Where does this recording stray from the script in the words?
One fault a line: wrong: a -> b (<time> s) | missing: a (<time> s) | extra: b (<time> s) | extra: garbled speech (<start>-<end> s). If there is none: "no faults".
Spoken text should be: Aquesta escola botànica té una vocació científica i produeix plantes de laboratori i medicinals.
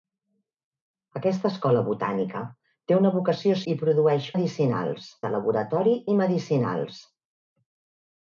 missing: científica (3.6 s)
wrong: plantes -> medicinals (4.3 s)